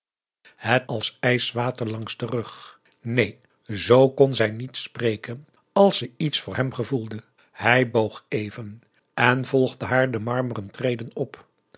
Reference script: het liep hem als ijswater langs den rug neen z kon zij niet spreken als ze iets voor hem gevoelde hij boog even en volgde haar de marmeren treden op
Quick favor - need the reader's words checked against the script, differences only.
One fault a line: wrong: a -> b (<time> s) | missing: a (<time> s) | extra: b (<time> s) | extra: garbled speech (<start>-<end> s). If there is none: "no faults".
missing: liep hem (0.9 s)